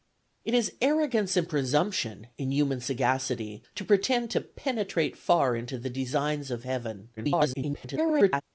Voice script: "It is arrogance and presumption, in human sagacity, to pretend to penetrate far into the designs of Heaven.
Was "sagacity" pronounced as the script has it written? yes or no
yes